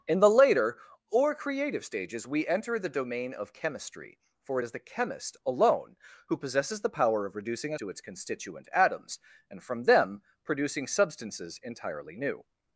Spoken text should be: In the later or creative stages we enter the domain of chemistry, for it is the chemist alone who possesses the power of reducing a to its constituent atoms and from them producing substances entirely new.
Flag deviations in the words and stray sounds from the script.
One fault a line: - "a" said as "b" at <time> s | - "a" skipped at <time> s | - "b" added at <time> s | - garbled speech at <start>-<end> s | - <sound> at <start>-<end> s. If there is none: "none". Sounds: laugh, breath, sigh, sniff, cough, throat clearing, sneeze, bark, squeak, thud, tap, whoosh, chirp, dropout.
none